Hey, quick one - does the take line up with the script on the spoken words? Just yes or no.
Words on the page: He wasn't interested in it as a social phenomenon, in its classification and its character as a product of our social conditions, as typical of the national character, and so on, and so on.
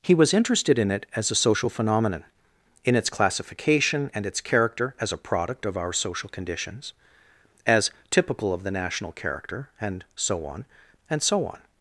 no